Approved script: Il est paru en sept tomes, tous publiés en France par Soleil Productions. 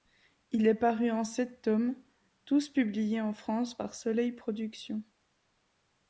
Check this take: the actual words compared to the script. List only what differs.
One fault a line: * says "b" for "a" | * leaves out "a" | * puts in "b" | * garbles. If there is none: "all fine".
all fine